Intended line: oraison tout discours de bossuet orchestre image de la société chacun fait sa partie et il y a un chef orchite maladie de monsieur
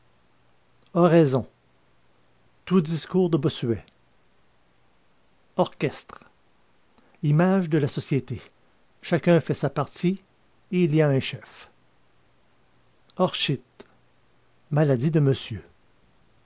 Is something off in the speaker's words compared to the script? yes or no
no